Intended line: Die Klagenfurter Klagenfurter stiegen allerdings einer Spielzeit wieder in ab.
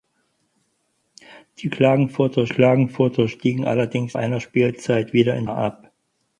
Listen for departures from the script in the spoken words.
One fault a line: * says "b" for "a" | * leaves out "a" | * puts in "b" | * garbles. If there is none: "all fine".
all fine